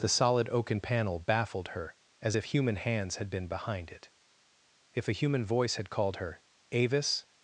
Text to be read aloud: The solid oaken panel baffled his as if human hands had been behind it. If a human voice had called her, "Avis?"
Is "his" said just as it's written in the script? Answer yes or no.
no